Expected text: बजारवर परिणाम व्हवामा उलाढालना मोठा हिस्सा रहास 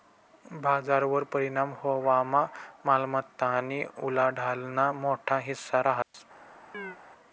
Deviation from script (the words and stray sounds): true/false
true